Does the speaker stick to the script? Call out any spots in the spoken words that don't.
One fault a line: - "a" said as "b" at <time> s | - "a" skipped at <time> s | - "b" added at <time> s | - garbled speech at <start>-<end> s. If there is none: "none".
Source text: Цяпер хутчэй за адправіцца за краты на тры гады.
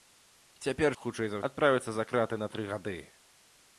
none